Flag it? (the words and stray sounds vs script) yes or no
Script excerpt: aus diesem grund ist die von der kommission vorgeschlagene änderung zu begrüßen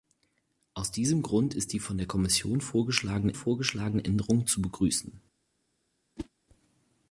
yes